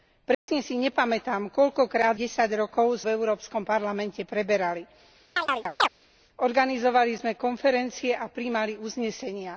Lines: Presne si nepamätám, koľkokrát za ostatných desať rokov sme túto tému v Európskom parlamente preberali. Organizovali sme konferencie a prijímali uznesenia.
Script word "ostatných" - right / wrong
wrong